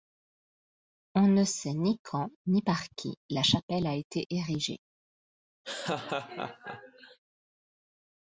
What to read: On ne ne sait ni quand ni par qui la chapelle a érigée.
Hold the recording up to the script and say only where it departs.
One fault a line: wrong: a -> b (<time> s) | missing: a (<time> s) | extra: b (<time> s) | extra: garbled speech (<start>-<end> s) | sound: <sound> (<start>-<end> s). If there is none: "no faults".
missing: ne (1.4 s)
extra: été (4.0 s)
sound: laugh (5.6-7.2 s)